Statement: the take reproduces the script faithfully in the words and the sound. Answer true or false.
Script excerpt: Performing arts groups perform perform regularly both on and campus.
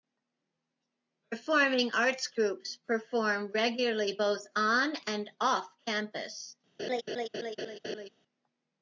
false